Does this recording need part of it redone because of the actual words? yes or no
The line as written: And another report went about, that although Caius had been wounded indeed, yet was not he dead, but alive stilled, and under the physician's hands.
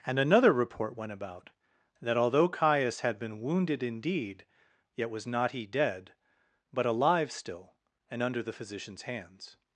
yes